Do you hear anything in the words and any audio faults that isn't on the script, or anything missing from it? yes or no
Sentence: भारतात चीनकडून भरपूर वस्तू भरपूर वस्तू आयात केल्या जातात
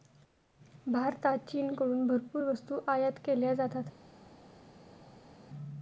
yes